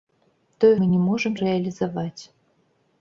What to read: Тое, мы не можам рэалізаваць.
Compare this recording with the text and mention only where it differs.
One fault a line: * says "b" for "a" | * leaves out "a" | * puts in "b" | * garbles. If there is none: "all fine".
all fine